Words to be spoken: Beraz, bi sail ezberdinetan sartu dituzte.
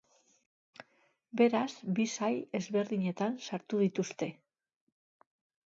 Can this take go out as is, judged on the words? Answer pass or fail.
pass